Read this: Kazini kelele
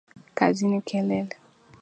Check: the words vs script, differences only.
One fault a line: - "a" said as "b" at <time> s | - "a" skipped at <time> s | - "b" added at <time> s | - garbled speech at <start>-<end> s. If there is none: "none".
none